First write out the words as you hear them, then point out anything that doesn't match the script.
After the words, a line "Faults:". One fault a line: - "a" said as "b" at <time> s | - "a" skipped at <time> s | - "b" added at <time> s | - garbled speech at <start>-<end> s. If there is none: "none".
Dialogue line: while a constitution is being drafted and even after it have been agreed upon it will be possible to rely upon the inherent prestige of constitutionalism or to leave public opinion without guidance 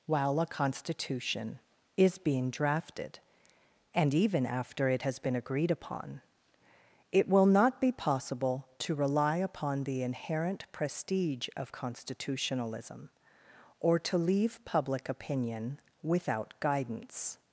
while a constitution is being drafted and even after it has been agreed upon it will not be possible to rely upon the inherent prestige of constitutionalism or to leave public opinion without guidance
Faults:
- "have" said as "has" at 5.0 s
- "not" added at 7.5 s